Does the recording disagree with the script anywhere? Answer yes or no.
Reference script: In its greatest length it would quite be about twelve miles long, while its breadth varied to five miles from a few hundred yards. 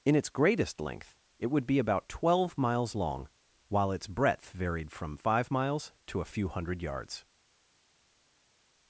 yes